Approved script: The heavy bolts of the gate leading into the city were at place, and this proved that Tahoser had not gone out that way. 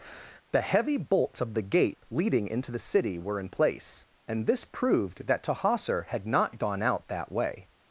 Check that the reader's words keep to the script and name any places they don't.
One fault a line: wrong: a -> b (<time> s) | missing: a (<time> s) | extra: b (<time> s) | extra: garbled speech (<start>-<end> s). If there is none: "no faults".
wrong: at -> in (3.4 s)